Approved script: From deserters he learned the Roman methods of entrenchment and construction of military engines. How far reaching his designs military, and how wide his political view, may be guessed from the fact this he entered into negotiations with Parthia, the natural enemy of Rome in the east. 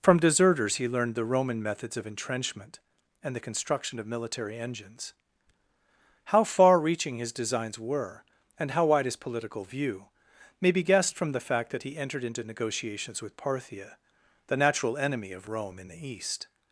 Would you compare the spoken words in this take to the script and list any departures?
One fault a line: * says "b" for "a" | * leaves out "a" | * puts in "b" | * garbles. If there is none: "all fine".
* puts in "the"
* says "were" for "military"
* says "that" for "this"